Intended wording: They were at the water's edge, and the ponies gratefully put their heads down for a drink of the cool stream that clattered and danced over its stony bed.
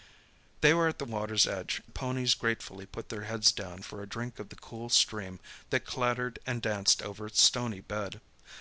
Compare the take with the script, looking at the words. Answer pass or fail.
fail